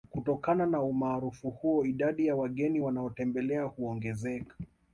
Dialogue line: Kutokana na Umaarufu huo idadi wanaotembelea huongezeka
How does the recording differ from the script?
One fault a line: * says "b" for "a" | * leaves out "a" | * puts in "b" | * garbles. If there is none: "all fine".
* puts in "ya wageni"